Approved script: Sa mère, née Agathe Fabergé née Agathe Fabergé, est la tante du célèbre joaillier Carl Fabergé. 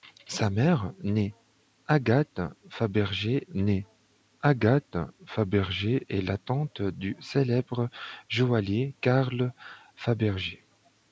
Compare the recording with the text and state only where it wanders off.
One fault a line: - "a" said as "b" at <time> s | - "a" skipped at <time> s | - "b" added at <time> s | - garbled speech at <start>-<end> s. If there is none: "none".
none